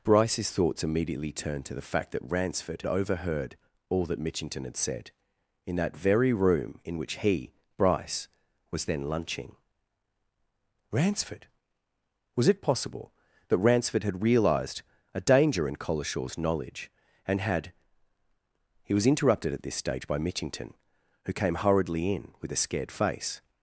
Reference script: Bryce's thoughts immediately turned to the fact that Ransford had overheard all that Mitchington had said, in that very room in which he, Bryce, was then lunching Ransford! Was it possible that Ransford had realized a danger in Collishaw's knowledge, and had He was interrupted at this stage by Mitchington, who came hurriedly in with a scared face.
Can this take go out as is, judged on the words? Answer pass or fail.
fail